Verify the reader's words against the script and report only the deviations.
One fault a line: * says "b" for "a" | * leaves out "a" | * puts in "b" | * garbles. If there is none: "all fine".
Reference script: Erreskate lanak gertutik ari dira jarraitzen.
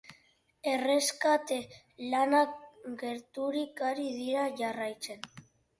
all fine